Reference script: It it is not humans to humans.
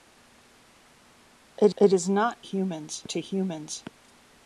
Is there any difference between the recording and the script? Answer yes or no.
no